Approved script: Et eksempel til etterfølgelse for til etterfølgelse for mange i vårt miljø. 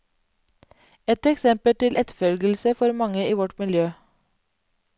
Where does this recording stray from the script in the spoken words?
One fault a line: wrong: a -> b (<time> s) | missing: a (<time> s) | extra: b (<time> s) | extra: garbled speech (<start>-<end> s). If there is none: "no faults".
missing: til etterfølgelse for (2.9 s)